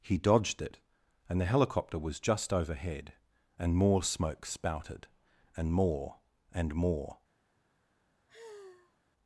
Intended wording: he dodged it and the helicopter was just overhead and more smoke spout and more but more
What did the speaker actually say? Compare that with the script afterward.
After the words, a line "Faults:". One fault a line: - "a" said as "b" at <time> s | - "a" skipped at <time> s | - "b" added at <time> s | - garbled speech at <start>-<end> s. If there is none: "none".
he dodged it and the helicopter was just overhead and more smoke spouted and more and more
Faults:
- "spout" said as "spouted" at 4.5 s
- "but" said as "and" at 6.5 s